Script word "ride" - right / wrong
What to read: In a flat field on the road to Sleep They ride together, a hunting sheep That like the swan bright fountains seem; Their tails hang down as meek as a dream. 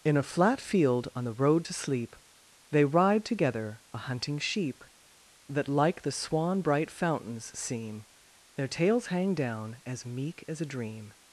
right